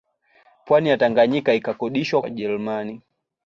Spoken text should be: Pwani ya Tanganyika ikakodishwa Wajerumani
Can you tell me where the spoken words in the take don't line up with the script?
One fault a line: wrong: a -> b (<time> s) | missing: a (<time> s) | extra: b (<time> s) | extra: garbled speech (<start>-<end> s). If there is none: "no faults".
no faults